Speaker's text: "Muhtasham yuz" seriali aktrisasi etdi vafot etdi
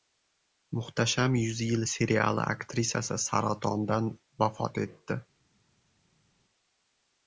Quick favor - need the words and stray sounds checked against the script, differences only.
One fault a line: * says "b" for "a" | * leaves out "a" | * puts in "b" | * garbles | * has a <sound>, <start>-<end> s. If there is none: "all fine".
* puts in "yil"
* says "saratondan" for "etdi"